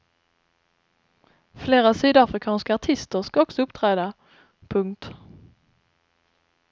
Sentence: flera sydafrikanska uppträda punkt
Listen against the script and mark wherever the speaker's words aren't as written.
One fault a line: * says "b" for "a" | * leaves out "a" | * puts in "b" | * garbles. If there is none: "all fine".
* puts in "artister ska också"